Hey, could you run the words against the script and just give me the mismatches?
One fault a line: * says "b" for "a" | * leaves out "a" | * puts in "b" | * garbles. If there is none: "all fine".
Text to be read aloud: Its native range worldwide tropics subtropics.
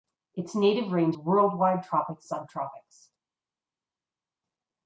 all fine